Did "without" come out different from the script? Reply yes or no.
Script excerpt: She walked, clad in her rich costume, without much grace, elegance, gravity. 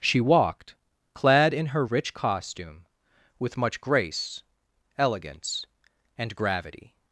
yes